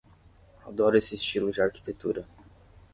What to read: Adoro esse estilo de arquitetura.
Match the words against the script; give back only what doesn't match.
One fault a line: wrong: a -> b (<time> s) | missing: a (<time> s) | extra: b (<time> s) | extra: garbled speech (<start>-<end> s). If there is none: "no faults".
no faults